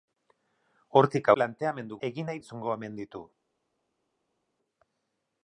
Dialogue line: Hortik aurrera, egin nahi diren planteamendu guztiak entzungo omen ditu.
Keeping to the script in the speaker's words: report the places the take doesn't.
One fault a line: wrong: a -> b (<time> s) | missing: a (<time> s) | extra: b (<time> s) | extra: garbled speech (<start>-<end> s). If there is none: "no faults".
wrong: aurrera -> planteamendu (1.4 s)
missing: diren planteamendu guztiak (2.4 s)